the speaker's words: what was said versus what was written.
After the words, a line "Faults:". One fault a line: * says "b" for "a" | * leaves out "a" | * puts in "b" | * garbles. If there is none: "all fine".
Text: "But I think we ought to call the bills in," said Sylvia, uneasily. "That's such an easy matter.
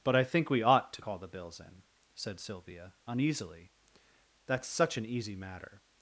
"But I think we ought to call the bills in," said Sylvia, uneasily. "That's such an easy matter.
Faults:
all fine